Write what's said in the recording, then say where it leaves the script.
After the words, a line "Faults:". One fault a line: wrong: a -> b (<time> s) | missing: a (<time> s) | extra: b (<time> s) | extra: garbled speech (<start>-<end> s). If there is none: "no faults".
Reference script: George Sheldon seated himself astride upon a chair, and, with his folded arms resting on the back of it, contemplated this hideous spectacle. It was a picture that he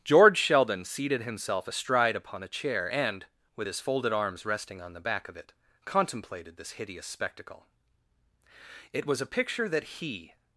George Sheldon seated himself astride upon a chair, and, with his folded arms resting on the back of it, contemplated this hideous spectacle. It was a picture that he
Faults:
no faults